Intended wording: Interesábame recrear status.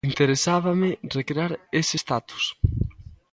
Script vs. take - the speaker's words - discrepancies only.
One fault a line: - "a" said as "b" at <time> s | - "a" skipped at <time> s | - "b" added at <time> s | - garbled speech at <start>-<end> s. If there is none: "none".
- "ese" added at 1.7 s